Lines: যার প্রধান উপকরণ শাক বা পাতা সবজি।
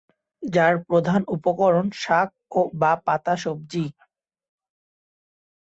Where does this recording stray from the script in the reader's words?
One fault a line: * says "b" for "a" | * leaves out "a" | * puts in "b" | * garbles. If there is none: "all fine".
all fine